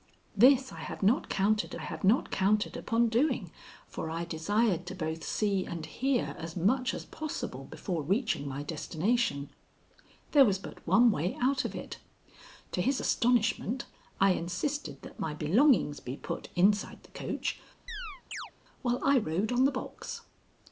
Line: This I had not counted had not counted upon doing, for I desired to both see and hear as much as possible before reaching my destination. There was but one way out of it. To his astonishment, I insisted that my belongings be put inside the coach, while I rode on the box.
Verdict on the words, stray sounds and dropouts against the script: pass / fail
fail